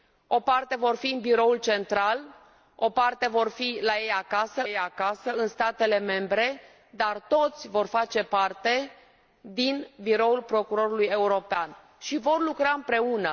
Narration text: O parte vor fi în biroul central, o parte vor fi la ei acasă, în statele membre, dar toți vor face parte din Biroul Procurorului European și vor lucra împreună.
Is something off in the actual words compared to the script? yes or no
yes